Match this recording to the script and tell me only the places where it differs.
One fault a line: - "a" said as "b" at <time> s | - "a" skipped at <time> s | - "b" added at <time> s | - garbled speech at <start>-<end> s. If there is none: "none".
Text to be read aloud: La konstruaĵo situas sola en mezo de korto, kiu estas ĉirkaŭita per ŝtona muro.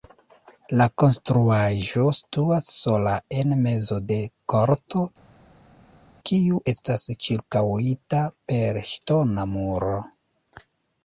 none